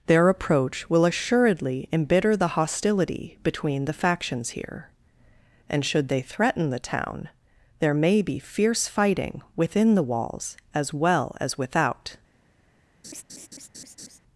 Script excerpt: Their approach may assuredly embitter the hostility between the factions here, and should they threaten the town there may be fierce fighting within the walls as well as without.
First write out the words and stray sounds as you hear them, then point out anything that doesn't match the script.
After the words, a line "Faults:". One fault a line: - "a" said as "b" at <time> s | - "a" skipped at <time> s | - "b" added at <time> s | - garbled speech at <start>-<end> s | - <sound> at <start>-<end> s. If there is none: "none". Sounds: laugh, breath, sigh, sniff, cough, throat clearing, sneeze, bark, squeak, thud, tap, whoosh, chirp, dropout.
Their approach will assuredly embitter the hostility between the factions here, and should they threaten the town there may be fierce fighting within the walls as well as without.
Faults:
- "may" said as "will" at 0.9 s
- laugh at 13.0-14.2 s